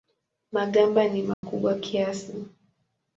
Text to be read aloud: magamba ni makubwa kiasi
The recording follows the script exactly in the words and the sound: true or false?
false